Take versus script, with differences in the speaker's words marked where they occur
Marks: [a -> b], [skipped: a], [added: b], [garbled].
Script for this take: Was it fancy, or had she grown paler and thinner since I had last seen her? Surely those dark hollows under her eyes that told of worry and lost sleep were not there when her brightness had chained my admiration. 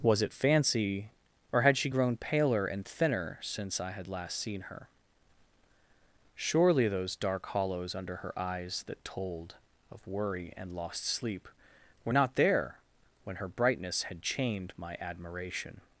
Was it fancy, or had she grown paler and thinner since I had last seen her? Surely those dark hollows under her eyes that told of worry and lost sleep were not there when her brightness had chained my admiration.